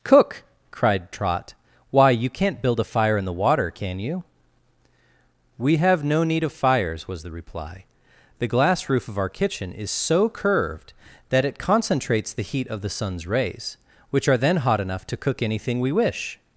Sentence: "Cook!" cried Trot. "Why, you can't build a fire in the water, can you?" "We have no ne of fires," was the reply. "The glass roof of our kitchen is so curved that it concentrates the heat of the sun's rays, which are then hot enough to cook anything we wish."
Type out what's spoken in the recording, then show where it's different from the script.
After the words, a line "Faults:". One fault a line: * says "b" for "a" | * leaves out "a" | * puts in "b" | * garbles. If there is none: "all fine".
"Cook!" cried Trot. "Why, you can't build a fire in the water, can you?" "We have no need of fires," was the reply. "The glass roof of our kitchen is so curved that it concentrates the heat of the sun's rays, which are then hot enough to cook anything we wish."
Faults:
* says "need" for "ne"